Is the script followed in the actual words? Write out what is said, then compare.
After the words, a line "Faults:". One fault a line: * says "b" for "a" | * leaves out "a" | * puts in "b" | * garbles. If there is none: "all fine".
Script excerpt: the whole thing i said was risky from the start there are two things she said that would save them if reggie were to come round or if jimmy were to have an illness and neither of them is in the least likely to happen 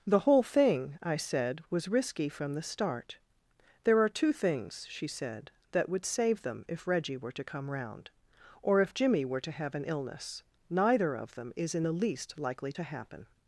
the whole thing i said was risky from the start there are two things she said that would save them if reggie were to come round or if jimmy were to have an illness neither of them is in the least likely to happen
Faults:
* leaves out "and"